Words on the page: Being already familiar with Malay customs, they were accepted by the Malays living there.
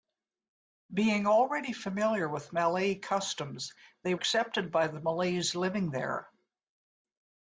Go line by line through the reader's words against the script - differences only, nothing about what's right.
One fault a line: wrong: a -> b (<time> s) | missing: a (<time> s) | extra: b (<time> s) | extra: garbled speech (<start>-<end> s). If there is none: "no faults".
missing: were (4.2 s)